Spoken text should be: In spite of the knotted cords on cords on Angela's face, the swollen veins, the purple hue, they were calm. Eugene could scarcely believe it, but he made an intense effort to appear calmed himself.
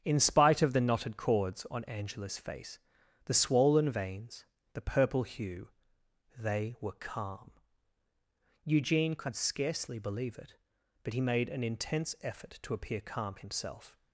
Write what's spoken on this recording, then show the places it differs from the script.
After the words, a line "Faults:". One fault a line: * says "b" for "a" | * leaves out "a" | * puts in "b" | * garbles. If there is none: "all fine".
In spite of the knotted cords on Angela's face, the swollen veins, the purple hue, they were calm. Eugene could scarcely believe it, but he made an intense effort to appear calm himself.
Faults:
* leaves out "cords on"
* says "calm" for "calmed"